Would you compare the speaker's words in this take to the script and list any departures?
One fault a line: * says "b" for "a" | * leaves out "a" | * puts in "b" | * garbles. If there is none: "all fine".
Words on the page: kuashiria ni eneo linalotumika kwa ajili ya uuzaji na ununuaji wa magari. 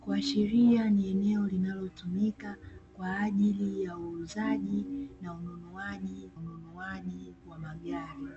* puts in "ununuaji"